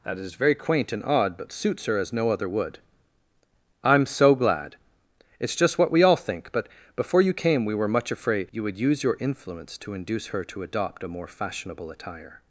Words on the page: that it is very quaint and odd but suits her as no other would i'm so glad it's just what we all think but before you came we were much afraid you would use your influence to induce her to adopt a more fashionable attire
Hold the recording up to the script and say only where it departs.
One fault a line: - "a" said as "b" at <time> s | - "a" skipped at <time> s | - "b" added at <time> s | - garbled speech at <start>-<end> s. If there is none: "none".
- "it" skipped at 0.2 s